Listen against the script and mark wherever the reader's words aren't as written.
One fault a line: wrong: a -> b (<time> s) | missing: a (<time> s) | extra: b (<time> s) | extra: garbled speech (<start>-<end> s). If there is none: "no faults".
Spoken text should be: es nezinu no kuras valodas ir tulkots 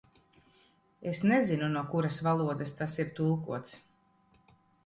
extra: tas (2.8 s)